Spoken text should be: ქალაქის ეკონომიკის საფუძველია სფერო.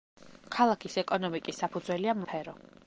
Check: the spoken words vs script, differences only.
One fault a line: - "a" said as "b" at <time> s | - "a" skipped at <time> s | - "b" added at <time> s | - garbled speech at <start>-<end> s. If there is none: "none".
none